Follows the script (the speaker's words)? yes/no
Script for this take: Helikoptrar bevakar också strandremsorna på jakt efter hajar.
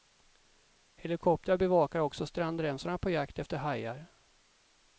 yes